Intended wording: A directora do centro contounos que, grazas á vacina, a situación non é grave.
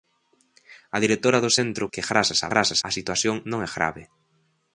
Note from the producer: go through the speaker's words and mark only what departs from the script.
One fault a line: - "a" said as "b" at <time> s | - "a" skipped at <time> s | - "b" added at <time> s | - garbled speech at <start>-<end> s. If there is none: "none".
- "contounos" skipped at 1.8 s
- "vacina" said as "grazas" at 2.5 s